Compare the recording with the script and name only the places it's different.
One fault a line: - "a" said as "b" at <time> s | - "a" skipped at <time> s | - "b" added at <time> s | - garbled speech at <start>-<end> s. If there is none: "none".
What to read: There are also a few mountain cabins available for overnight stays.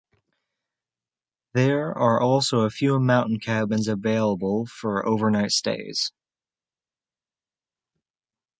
none